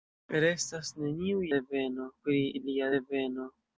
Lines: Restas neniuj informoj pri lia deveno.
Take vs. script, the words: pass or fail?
fail